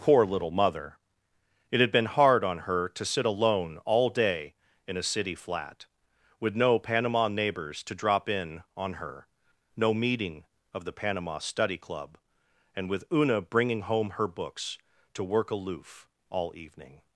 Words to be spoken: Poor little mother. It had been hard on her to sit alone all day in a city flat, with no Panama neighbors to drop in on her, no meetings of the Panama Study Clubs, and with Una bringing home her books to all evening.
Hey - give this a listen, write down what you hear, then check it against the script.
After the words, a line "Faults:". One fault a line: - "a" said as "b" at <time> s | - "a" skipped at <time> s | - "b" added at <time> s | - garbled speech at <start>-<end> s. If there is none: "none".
Poor little mother. It had been hard on her to sit alone all day in a city flat, with no Panama neighbors to drop in on her, no meeting of the Panama Study Club, and with Una bringing home her books to work aloof all evening.
Faults:
- "meetings" said as "meeting" at 9.9 s
- "Clubs" said as "Club" at 11.8 s
- "work aloof" added at 15.2 s